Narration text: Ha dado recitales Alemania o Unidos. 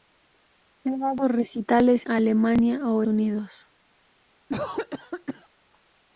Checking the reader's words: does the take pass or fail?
pass